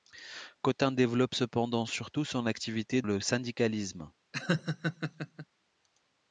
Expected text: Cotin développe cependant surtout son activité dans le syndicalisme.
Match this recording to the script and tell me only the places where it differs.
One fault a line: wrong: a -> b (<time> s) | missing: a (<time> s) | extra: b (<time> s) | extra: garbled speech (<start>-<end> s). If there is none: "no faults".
missing: dans (3.0 s)